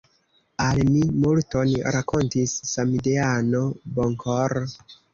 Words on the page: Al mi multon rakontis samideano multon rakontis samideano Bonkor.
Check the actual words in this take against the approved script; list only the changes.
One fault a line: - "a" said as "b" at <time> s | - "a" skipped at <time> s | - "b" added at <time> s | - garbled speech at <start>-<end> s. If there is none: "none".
- "multon rakontis samideano" skipped at 3.6 s